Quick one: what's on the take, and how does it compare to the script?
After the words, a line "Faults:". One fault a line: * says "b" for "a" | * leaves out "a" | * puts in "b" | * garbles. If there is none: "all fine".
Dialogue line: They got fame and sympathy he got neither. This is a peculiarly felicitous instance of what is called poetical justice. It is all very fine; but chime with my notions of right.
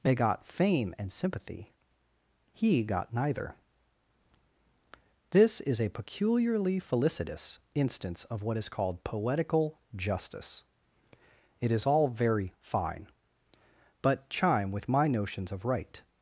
They got fame and sympathy he got neither. This is a peculiarly felicitous instance of what is called poetical justice. It is all very fine; but chime with my notions of right.
Faults:
all fine